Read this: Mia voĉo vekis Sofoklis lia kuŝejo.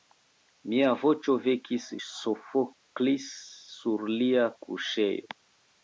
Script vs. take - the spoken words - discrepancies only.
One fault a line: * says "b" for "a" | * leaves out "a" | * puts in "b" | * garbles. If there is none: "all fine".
* puts in "sur"